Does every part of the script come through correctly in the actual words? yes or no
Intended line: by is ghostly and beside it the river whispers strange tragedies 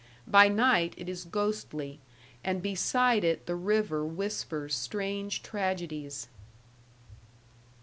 no